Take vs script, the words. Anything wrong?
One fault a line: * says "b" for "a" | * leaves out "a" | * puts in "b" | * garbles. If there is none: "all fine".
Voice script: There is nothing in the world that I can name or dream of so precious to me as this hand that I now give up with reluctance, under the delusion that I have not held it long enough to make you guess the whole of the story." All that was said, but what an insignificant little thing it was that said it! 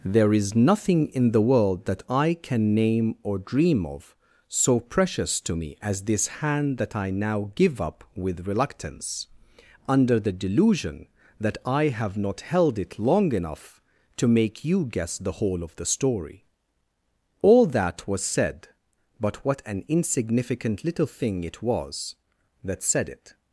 all fine